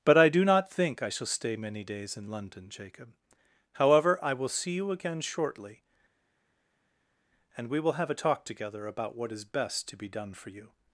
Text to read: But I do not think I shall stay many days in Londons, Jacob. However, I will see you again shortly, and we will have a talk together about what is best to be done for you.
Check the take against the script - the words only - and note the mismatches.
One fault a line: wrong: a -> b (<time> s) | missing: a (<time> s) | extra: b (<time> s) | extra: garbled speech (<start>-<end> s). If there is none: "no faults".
wrong: Londons -> London (2.3 s)